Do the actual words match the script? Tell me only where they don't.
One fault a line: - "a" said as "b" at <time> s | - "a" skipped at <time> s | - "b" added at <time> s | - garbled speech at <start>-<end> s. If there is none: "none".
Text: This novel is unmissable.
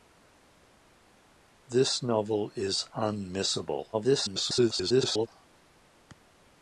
- garbled speech at 3.9-5.3 s